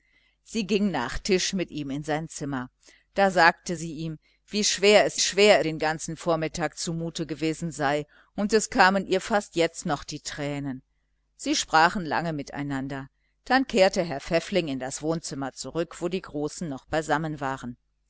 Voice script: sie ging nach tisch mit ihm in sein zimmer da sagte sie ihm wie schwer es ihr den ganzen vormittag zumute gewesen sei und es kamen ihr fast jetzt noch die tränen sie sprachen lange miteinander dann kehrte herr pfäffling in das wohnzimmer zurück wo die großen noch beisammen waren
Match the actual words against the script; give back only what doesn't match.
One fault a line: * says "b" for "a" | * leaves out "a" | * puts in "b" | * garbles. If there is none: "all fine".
* says "schwer" for "ihr"